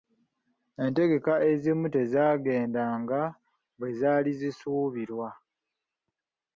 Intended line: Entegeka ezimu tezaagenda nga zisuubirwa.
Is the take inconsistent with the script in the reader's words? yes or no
yes